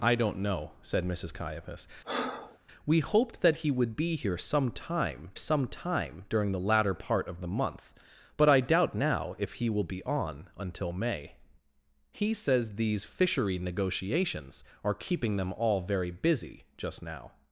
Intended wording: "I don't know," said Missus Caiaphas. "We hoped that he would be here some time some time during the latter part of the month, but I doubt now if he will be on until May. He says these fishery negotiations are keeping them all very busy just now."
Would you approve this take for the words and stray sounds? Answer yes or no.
no